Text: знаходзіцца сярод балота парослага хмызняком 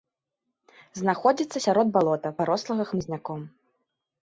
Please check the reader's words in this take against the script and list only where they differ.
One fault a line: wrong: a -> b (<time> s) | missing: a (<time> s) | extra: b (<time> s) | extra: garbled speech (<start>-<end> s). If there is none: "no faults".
no faults